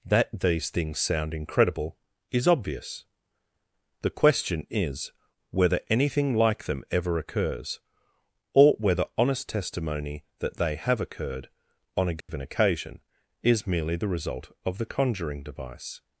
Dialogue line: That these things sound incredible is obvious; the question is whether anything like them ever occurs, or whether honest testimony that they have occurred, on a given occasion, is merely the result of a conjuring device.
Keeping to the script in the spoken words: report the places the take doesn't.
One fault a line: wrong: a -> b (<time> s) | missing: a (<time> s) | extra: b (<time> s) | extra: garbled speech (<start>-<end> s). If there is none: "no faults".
wrong: a -> the (14.8 s)